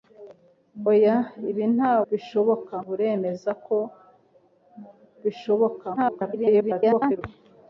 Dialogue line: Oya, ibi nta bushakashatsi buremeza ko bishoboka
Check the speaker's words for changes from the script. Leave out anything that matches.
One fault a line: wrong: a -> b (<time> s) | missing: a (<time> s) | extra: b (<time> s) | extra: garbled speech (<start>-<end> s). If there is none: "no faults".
wrong: bushakashatsi -> bishoboka (2.1 s)
extra: garbled speech (6.0-7.2 s)